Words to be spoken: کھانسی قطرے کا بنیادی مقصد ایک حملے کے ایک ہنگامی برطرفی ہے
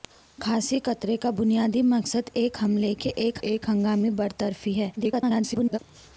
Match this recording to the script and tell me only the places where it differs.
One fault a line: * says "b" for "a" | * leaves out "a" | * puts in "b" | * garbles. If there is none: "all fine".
* puts in "ایک"
* garbles